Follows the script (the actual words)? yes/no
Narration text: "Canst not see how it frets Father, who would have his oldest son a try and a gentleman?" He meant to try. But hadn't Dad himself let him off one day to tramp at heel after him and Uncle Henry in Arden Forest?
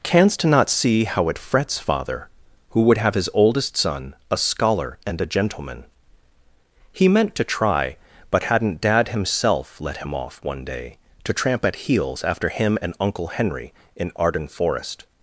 no